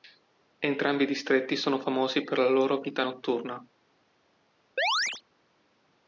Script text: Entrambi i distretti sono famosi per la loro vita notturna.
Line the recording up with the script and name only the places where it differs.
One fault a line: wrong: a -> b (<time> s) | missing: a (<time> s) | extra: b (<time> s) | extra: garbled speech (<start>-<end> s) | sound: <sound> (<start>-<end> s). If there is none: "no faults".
sound: chirp (4.8-5.2 s)